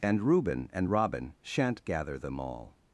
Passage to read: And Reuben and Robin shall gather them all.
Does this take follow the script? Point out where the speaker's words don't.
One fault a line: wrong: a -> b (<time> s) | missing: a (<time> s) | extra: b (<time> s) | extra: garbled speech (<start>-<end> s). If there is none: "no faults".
wrong: shall -> shan't (1.4 s)